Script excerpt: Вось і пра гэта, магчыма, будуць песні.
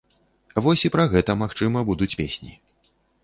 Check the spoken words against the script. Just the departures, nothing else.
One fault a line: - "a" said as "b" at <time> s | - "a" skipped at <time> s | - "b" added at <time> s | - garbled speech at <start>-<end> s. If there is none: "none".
none